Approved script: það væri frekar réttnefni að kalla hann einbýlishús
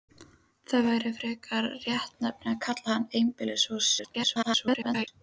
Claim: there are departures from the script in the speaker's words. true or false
true